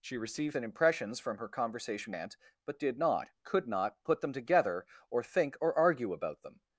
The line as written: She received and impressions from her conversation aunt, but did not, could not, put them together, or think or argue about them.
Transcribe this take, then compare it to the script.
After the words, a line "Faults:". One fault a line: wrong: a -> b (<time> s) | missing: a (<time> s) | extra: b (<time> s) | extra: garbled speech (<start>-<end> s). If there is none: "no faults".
She received and impressions from her conversation aunt, but did not, could not, put them together, or think or argue about them.
Faults:
no faults